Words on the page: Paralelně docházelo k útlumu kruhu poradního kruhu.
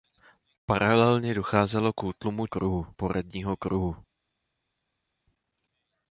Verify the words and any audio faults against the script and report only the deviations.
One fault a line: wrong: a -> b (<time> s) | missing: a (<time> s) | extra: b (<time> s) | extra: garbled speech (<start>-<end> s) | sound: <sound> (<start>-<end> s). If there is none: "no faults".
no faults